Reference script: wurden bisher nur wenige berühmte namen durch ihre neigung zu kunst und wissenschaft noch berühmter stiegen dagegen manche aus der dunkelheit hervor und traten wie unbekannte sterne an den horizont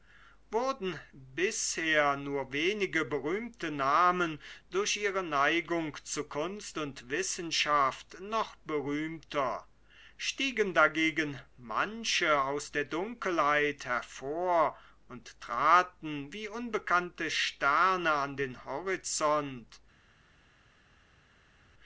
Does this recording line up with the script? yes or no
yes